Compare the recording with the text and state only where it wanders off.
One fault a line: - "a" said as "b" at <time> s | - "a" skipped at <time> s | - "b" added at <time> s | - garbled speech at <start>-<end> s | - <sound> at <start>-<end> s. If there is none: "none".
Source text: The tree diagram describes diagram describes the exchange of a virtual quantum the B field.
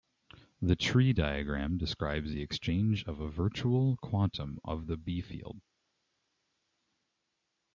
- "diagram describes" skipped at 2.3 s
- "of" added at 4.6 s